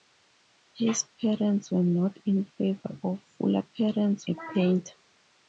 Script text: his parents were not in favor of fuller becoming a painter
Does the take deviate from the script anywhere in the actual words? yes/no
yes